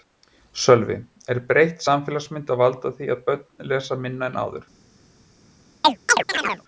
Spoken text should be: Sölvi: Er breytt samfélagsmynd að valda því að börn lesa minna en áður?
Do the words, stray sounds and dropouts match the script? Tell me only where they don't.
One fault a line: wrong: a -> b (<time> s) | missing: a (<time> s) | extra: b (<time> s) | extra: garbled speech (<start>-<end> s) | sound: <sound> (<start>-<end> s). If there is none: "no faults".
sound: chirp (5.8-6.6 s)